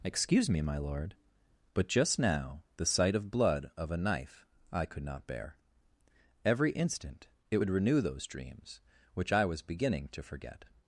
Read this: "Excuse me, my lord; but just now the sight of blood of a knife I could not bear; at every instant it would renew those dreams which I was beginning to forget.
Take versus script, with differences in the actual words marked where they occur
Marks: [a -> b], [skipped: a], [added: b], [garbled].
"Excuse me, my lord; but just now the sight of blood of a knife I could not bear; [skipped: at] every instant it would renew those dreams which I was beginning to forget.